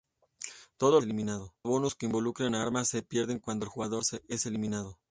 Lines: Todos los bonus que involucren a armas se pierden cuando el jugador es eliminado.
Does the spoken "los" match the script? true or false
false